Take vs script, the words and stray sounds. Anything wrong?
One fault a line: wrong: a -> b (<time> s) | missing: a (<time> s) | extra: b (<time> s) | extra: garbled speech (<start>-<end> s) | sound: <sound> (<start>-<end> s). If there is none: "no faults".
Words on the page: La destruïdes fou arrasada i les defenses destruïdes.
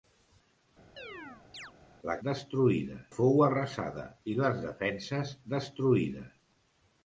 sound: chirp (1.0-1.7 s)